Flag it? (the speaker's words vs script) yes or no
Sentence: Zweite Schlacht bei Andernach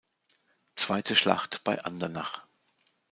no